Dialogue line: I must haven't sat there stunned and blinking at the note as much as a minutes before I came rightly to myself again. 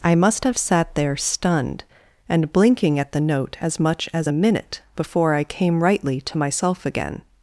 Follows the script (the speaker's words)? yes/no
no